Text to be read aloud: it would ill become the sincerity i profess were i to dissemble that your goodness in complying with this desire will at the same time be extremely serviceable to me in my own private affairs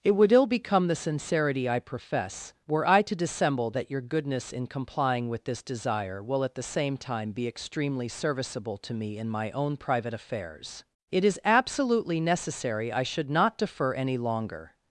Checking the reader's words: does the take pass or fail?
fail